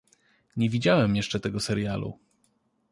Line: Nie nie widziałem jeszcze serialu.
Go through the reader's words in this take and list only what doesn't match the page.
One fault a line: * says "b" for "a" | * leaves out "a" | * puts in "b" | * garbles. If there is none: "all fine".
* leaves out "nie"
* puts in "tego"